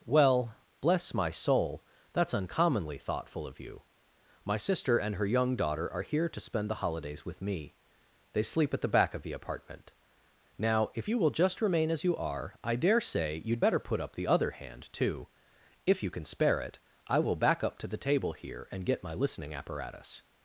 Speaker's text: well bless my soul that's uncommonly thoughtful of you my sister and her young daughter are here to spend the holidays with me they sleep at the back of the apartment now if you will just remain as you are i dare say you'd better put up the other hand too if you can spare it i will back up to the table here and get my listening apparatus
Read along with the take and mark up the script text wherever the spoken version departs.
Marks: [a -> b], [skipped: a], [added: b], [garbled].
well bless my soul that's uncommonly thoughtful of you my sister and her young daughter are here to spend the holidays with me they sleep at the back of the apartment now if you will just remain as you are i dare say you'd better put up the other hand too if you can spare it i will back up to the table here and get my listening apparatus